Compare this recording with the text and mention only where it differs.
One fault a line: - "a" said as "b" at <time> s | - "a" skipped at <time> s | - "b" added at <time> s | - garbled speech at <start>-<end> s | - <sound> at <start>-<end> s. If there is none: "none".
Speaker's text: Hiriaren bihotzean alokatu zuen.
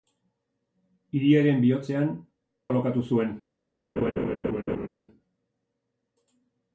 - laugh at 4.0-4.9 s